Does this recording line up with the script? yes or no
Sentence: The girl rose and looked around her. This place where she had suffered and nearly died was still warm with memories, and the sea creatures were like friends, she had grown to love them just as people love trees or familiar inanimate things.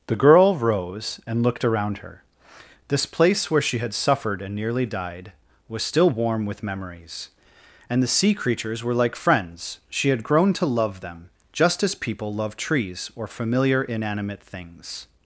yes